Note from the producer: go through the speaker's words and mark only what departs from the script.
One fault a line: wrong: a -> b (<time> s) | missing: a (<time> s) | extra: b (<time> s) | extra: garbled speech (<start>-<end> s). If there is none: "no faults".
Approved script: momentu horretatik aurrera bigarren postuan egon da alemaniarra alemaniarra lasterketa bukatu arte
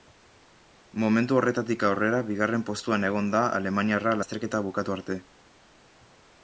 missing: alemaniarra (4.2 s)